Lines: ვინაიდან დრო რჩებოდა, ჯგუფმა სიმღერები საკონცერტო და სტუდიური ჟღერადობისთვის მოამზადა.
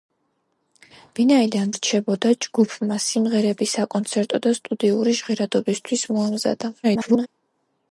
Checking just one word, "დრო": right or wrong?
wrong